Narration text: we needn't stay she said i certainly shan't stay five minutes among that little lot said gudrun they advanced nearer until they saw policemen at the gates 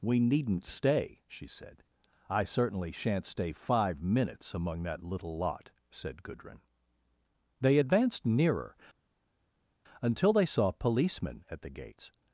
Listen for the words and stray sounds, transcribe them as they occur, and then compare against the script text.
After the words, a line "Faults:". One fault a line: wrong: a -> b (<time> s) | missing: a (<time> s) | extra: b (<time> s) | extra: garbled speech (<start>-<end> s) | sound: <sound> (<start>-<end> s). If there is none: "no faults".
we needn't stay she said i certainly shan't stay five minutes among that little lot said gudrun they advanced nearer until they saw policemen at the gates
Faults:
no faults